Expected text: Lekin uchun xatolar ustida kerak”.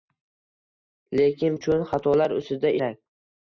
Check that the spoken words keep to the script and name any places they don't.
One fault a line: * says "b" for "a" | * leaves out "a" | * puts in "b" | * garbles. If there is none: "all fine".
all fine